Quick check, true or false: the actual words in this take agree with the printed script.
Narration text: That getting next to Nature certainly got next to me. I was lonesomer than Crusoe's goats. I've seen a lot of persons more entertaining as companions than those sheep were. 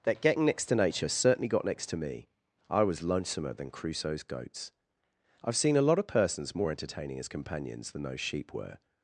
true